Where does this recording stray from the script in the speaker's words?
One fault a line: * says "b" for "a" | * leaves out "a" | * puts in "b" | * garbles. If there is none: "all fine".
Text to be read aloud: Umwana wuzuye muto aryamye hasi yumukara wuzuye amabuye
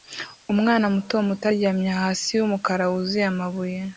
* says "muto" for "wuzuye"